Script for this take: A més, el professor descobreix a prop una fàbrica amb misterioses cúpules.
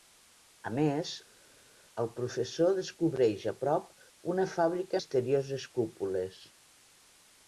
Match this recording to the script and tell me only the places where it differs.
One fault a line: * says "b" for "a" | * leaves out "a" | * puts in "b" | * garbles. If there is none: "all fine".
* leaves out "amb"